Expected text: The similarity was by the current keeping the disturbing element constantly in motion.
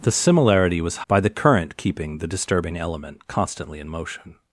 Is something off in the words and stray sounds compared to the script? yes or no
no